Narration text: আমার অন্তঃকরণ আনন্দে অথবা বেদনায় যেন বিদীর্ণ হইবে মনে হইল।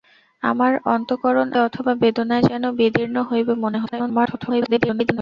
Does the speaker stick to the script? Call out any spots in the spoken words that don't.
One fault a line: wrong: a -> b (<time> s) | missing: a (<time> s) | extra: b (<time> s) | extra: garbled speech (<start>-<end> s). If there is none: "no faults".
missing: আনন্দে (1.5 s)
extra: garbled speech (3.9-5.2 s)